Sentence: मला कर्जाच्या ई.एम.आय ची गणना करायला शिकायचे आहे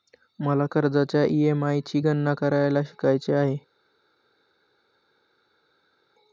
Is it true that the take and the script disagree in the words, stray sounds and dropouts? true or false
false